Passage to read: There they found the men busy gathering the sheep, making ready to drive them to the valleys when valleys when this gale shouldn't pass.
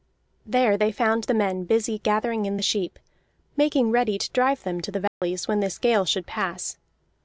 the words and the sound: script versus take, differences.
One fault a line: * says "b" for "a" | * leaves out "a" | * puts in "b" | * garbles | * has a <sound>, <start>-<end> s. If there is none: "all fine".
* puts in "in"
* has a dropout, 5.1-5.2 s
* leaves out "valleys when"
* says "should" for "shouldn't"